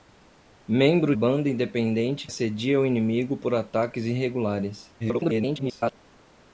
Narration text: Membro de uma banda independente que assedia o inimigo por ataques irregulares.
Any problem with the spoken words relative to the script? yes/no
yes